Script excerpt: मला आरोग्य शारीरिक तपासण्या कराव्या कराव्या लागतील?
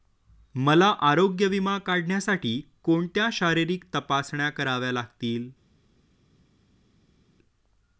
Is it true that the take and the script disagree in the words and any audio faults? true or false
true